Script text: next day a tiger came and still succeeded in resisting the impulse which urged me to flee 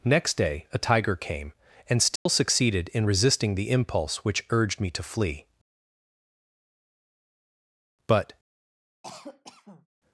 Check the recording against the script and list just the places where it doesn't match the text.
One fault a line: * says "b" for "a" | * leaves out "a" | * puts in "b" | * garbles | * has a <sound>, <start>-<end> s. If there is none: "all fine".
* has a dropout, 2.2-2.3 s
* puts in "but"
* has a cough, 9.0-9.9 s